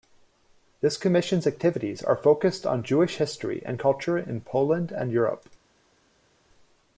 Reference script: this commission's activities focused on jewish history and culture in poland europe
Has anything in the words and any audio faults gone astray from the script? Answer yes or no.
yes